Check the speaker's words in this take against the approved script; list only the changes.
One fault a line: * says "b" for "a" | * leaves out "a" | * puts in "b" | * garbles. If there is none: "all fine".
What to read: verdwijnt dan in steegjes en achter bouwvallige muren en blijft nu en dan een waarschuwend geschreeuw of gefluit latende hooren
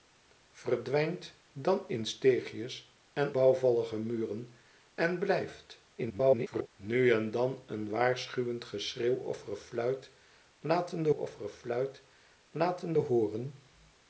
* leaves out "achter"
* garbles
* puts in "of gefluit latende"